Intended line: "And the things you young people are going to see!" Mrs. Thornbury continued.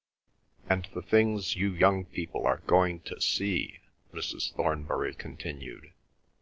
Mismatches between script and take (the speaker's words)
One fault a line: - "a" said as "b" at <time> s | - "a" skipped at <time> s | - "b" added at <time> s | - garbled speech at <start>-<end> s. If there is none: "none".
none